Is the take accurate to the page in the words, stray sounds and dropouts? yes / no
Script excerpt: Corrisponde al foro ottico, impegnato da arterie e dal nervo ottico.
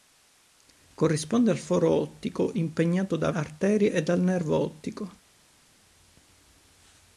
yes